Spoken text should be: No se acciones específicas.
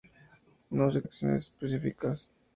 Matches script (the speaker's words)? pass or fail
pass